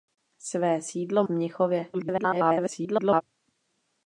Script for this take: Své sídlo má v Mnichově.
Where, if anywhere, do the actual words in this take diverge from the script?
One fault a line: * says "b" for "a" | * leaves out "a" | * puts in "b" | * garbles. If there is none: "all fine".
* leaves out "má"
* garbles